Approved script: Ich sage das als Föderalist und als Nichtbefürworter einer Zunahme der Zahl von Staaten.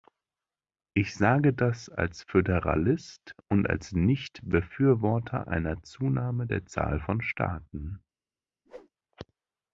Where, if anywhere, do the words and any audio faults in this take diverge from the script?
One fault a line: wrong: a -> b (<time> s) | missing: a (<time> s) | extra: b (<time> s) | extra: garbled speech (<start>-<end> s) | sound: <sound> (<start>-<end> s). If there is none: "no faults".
sound: whoosh (8.6-8.9 s)